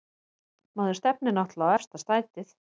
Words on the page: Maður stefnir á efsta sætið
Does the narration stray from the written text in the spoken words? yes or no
yes